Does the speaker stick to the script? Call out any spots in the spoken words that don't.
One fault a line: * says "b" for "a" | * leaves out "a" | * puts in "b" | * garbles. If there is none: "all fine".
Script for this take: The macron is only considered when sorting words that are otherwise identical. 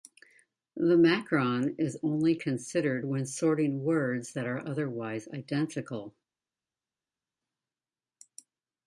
all fine